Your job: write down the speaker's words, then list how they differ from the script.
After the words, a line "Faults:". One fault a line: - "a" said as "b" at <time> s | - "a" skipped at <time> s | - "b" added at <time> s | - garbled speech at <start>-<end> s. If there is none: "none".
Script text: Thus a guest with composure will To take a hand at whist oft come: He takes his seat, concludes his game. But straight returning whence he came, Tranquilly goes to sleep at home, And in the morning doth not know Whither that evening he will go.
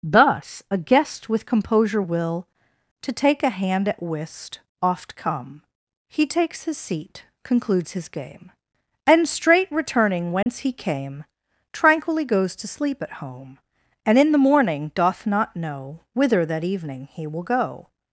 Thus a guest with composure will To take a hand at whist oft come: He takes his seat, concludes his game. And straight returning whence he came, Tranquilly goes to sleep at home, And in the morning doth not know Whither that evening he will go.
Faults:
- "But" said as "And" at 9.1 s